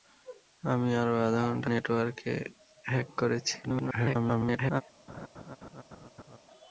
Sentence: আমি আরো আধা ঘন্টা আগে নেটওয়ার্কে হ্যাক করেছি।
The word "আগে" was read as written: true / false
false